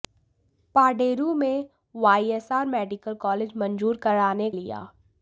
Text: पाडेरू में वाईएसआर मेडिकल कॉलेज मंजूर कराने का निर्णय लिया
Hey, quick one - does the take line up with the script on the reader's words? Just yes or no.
no